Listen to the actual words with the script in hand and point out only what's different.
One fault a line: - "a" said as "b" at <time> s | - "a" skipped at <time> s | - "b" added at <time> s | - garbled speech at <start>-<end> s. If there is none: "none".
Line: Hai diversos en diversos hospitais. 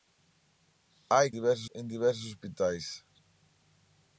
none